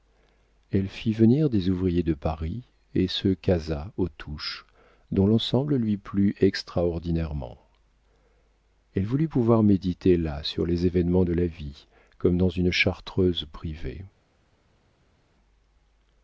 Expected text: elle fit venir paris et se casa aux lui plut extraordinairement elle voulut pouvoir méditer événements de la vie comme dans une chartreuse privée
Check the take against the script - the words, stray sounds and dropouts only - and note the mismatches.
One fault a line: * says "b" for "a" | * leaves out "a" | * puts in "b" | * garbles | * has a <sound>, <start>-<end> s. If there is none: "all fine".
* puts in "des ouvriers de"
* puts in "touches dont l'ensemble"
* puts in "là sur les"